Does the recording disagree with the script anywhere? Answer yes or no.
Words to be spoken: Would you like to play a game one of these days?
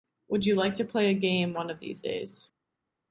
no